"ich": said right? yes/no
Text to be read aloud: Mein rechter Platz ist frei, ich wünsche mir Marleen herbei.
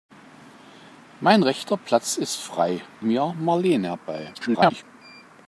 no